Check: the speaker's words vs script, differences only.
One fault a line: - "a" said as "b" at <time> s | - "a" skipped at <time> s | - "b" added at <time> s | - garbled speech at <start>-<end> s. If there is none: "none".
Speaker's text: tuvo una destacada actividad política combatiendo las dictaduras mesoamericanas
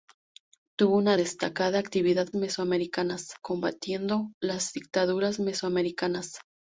- "política" said as "mesoamericanas" at 2.3 s